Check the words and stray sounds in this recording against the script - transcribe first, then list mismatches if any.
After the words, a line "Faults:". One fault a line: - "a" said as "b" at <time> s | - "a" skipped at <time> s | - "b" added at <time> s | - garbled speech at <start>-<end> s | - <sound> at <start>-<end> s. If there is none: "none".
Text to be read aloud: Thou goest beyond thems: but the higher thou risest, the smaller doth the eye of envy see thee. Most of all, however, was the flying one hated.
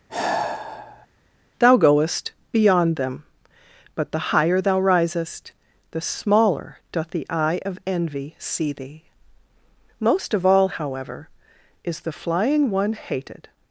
Thou goest beyond them: but the higher thou risest, the smaller doth the eye of envy see thee. Most of all, however, is the flying one hated.
Faults:
- sigh at 0.1-1.1 s
- "thems" said as "them" at 3.0 s
- "was" said as "is" at 11.8 s